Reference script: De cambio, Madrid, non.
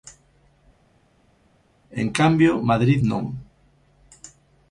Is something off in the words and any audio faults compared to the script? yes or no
yes